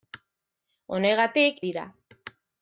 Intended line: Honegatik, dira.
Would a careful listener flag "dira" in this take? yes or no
no